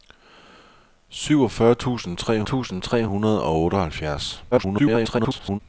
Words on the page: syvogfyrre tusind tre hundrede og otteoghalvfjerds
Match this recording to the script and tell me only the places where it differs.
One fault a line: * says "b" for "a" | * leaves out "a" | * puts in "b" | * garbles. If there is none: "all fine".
* puts in "tusind tre"
* garbles